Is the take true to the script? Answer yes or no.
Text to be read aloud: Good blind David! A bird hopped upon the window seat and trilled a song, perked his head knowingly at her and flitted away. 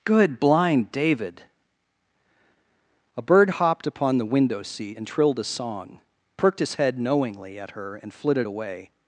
yes